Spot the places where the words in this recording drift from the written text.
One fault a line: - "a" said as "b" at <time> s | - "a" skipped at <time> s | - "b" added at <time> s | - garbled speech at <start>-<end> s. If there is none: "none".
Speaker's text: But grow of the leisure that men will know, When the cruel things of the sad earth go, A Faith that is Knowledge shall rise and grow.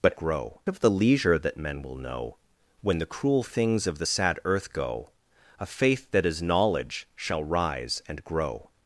none